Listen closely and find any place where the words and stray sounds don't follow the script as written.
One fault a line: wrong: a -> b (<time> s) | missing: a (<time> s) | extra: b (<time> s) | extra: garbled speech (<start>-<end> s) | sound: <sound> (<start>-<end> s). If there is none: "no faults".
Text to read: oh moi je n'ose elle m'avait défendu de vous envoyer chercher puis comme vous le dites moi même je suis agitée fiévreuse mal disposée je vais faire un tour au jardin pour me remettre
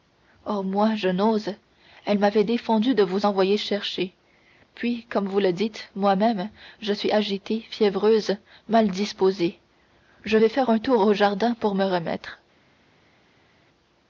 no faults